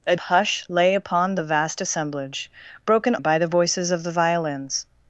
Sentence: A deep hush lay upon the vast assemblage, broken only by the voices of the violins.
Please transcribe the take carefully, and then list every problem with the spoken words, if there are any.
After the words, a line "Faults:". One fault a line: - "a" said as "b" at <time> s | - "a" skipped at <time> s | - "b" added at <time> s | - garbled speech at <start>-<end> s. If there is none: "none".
A hush lay upon the vast assemblage, broken by the voices of the violins.
Faults:
- "deep" skipped at 0.1 s
- "only" skipped at 3.1 s